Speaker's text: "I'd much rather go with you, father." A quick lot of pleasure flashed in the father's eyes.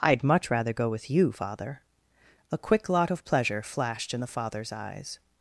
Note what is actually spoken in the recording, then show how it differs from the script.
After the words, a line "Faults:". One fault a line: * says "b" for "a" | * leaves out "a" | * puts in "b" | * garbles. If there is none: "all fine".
"I'd much rather go with you, father." A quick lot of pleasure flashed in the father's eyes.
Faults:
all fine